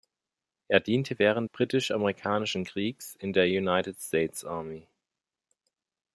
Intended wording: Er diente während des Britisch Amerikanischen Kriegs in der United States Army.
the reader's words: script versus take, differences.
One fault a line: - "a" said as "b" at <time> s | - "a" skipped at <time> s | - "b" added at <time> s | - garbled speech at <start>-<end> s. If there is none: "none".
- "des" skipped at 1.5 s